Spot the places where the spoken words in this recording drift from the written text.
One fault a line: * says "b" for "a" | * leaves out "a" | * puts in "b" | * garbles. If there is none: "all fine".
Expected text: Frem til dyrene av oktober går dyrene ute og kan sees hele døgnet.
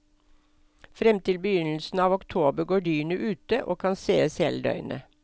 * says "begynnelsen" for "dyrene"